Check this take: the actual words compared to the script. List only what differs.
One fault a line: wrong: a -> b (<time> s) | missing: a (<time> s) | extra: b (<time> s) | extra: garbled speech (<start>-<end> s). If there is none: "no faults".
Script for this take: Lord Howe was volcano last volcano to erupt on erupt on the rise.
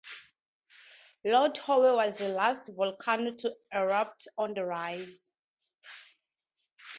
wrong: volcano -> the (2.1 s)
missing: erupt on (4.5 s)